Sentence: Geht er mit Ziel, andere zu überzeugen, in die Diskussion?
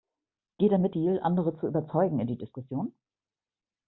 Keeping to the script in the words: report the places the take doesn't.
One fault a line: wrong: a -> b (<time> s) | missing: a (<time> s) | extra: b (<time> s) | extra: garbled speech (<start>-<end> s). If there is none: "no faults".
no faults